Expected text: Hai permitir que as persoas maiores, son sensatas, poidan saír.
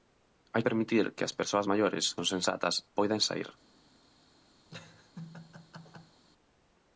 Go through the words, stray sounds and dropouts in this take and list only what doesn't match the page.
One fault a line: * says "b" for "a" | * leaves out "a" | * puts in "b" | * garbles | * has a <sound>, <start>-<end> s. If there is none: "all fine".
* has a laugh, 4.7-6.2 s